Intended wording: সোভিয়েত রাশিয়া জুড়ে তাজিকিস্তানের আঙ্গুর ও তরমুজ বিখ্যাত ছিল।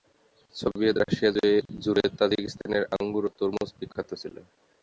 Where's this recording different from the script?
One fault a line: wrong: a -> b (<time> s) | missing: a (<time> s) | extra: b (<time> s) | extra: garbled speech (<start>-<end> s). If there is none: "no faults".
no faults